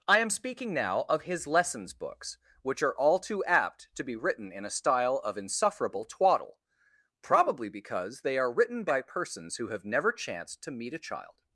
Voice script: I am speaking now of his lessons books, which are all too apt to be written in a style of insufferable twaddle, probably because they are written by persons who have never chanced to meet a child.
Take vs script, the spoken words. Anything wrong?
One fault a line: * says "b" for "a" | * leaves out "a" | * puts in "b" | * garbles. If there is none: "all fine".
all fine